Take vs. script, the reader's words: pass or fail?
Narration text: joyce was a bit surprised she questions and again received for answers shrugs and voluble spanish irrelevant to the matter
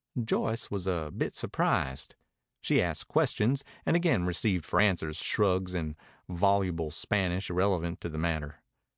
fail